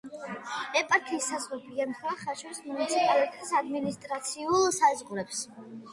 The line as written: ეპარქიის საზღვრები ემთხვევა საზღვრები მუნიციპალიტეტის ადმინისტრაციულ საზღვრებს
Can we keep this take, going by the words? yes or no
no